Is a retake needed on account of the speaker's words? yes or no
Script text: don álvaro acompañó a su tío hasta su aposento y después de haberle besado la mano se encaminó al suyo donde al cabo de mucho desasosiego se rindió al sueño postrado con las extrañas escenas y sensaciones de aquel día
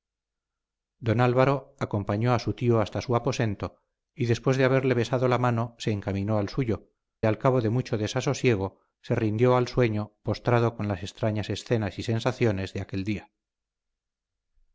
yes